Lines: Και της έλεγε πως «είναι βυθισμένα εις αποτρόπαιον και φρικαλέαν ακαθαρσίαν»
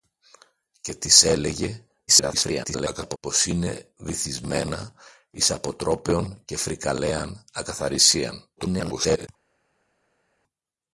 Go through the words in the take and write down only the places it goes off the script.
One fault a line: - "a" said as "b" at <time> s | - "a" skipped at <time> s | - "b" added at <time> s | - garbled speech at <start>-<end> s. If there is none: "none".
- garbled speech at 2.1-3.2 s
- garbled speech at 8.6-9.3 s